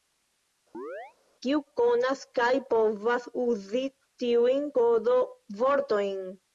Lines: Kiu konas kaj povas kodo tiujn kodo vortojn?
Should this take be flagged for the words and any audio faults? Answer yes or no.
yes